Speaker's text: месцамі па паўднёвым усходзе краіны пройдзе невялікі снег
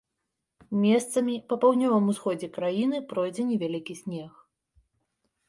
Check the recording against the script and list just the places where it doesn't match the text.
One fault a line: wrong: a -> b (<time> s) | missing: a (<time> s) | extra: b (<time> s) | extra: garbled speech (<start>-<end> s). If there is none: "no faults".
no faults